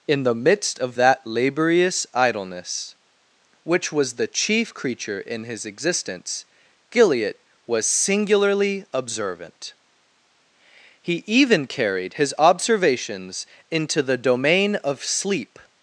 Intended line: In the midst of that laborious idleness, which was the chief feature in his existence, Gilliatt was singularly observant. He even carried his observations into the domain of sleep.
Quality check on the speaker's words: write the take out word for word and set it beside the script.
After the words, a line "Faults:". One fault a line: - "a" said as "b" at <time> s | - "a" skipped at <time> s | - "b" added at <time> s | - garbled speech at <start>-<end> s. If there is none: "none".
In the midst of that laborious idleness, which was the chief creature in his existence, Gilliatt was singularly observant. He even carried his observations into the domain of sleep.
Faults:
- "feature" said as "creature" at 4.7 s